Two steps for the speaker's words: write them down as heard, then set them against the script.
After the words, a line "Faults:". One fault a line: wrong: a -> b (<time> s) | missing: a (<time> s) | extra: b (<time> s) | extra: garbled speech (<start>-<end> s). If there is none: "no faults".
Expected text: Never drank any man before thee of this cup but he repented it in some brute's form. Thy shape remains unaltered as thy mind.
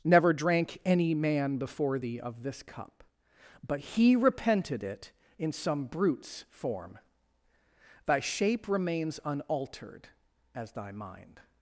Never drank any man before thee of this cup but he repented it in some brute's form. Thy shape remains unaltered as thy mind.
Faults:
no faults